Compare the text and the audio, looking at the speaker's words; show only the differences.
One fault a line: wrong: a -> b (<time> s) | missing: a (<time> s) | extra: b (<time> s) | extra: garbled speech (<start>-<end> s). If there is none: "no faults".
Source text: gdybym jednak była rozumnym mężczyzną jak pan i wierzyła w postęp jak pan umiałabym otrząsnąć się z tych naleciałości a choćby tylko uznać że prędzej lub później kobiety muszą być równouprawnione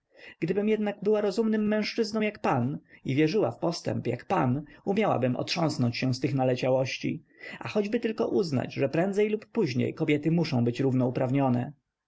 no faults